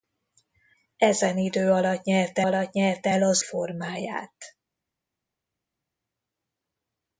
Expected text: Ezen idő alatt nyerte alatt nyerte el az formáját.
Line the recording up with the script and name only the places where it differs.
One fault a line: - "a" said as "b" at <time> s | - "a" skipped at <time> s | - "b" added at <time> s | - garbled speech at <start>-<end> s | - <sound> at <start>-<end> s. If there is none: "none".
none